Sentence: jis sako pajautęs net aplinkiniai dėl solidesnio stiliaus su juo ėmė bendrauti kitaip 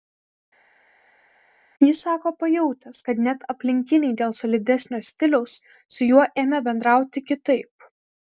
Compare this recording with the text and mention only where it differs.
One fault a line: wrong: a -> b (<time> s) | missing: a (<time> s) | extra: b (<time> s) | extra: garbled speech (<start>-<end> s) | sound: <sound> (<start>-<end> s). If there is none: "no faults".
extra: kad (3.1 s)